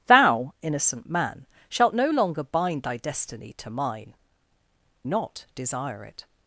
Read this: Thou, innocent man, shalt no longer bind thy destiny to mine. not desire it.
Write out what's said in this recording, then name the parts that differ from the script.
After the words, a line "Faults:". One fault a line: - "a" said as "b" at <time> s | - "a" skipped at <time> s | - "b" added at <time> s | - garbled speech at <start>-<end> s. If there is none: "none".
Thou, innocent man, shalt no longer bind thy destiny to mine. not desire it.
Faults:
none